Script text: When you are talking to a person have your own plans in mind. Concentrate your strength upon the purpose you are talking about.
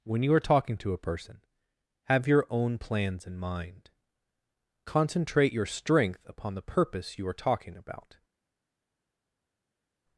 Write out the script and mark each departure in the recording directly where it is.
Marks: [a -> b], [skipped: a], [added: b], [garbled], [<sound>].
When you are talking to a person have your own plans in mind. Concentrate your strength upon the purpose you are talking about.